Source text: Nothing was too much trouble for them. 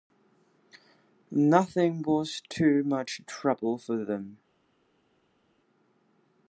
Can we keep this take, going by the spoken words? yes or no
yes